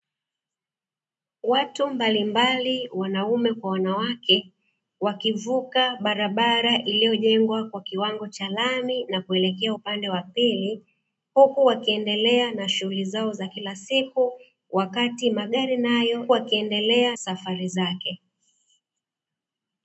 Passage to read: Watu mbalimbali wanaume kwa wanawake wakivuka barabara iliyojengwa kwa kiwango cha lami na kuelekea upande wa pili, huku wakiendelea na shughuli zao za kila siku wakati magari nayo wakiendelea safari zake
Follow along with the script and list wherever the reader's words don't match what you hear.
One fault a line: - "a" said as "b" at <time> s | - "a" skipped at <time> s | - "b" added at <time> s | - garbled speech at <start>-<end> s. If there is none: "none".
none